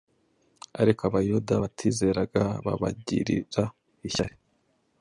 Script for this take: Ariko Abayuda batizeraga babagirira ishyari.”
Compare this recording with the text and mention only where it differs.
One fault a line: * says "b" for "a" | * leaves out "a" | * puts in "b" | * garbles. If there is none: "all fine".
all fine